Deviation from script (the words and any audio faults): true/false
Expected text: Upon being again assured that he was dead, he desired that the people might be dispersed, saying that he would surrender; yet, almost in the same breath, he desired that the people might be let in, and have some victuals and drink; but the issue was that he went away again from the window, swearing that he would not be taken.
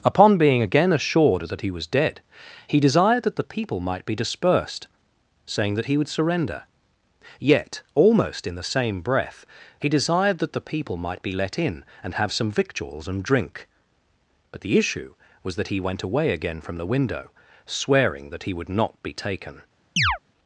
true